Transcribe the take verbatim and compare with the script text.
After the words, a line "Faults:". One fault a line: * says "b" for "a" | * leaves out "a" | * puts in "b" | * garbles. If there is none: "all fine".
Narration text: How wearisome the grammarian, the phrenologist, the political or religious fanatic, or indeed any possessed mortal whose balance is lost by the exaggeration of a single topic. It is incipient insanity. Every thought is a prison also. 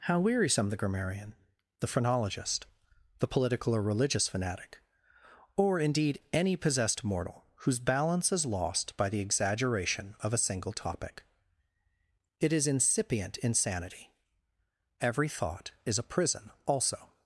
How wearisome the grammarian, the phrenologist, the political or religious fanatic, or indeed any possessed mortal whose balance is lost by the exaggeration of a single topic. It is incipient insanity. Every thought is a prison also.
Faults:
all fine